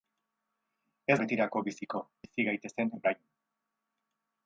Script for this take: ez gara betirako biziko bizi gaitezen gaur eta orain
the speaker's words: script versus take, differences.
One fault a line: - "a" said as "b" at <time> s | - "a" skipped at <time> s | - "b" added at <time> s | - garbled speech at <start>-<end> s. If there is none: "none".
- "gara" skipped at 1.2 s
- "gaur eta" skipped at 2.9 s